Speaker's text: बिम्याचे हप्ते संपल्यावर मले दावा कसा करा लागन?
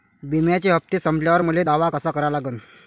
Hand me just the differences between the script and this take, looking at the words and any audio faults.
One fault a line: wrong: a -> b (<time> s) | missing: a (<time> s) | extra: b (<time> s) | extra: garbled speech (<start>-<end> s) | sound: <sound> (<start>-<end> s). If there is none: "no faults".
no faults